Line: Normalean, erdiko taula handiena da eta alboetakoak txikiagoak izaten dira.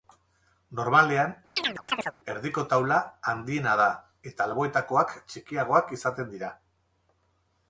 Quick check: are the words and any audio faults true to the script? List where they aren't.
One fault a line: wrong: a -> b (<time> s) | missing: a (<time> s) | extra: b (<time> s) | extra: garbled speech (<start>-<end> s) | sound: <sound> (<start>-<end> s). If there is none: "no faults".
sound: chirp (1.6-2.1 s)